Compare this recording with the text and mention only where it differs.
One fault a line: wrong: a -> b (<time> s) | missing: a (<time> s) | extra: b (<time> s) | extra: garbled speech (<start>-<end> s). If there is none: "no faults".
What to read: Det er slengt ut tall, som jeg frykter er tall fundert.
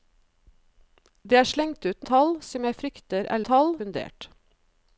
no faults